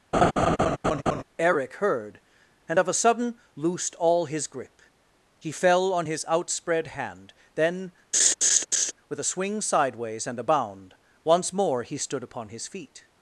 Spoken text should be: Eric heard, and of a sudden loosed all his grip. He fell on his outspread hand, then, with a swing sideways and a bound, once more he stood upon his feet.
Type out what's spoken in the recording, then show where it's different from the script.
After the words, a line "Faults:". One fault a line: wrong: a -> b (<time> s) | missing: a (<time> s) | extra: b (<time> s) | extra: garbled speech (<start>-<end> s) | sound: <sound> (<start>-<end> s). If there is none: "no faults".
Eric heard, and of a sudden loosed all his grip. He fell on his outspread hand, then, with a swing sideways and a bound, once more he stood upon his feet.
Faults:
sound: laugh (0.1-1.2 s)
sound: laugh (8.1-8.9 s)